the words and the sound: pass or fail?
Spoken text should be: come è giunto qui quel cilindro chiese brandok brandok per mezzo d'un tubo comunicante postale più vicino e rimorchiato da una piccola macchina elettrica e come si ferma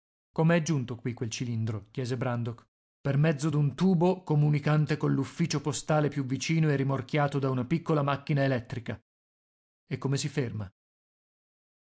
fail